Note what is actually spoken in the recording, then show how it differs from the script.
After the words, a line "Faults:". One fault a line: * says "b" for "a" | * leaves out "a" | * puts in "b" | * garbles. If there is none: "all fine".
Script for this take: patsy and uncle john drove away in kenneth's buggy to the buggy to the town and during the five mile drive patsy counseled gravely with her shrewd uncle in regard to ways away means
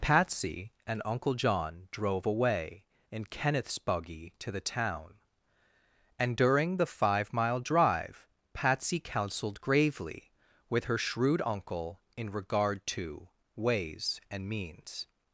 patsy and uncle john drove away in kenneth's buggy to the town and during the five mile drive patsy counseled gravely with her shrewd uncle in regard to ways and means
Faults:
* leaves out "buggy to the"
* says "and" for "away"